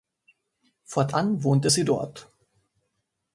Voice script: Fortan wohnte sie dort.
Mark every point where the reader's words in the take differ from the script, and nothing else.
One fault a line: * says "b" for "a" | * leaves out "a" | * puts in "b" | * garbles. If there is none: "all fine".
all fine